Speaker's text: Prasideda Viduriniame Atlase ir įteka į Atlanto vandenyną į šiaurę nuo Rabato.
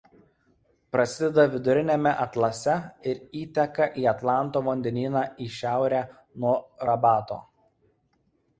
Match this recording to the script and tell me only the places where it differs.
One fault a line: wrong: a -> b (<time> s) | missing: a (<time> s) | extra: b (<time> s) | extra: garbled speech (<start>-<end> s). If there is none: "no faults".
no faults